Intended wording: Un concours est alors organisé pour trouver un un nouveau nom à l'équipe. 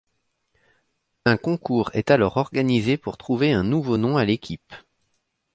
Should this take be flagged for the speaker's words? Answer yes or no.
yes